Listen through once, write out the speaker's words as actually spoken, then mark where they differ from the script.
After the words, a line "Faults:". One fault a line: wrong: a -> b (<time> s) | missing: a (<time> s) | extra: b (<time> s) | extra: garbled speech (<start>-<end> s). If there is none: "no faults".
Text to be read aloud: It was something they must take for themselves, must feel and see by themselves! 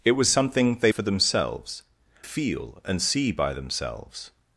It was something they for themselves, feel and see by themselves!
Faults:
missing: must take (0.9 s)
missing: must (1.8 s)